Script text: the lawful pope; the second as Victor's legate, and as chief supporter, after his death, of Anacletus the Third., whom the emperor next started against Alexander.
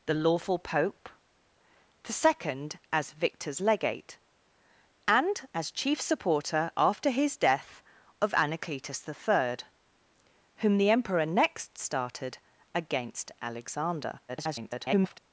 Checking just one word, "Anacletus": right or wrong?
right